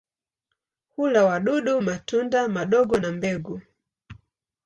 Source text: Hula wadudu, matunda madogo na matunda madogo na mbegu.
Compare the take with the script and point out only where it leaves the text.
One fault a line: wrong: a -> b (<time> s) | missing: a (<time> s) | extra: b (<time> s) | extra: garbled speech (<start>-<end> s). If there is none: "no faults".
missing: matunda madogo na (3.1 s)